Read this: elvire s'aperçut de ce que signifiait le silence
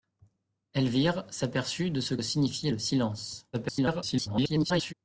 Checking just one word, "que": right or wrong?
wrong